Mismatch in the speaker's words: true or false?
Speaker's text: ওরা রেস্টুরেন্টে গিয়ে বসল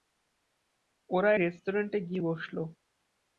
false